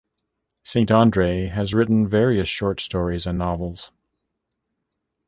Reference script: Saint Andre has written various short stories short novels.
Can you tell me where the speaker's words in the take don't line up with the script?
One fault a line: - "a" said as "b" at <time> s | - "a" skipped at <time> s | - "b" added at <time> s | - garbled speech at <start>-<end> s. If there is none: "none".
- "short" said as "and" at 3.3 s